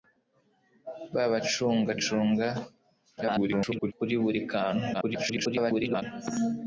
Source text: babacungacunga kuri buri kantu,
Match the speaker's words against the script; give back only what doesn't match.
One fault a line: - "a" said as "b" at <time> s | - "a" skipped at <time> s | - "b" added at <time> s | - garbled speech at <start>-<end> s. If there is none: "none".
- garbled speech at 3.2-3.9 s
- garbled speech at 4.9-6.0 s